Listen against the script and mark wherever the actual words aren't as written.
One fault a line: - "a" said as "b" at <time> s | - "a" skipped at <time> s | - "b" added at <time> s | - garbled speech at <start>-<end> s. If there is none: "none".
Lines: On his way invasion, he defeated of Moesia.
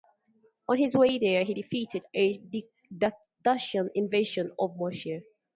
- "invasion" said as "there" at 1.2 s
- "a Dacian invasion" added at 2.2 s